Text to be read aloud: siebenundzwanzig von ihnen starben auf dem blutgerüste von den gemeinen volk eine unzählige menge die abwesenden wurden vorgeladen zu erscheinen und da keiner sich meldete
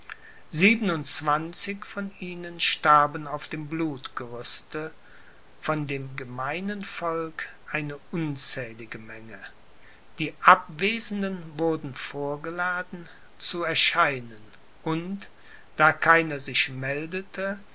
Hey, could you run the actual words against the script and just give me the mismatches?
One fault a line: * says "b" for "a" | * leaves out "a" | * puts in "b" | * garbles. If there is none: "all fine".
* says "dem" for "den"